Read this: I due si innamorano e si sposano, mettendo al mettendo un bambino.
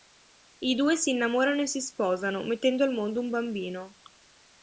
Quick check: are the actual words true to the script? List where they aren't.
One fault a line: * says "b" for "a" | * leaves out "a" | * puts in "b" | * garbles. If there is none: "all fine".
* says "mondo" for "mettendo"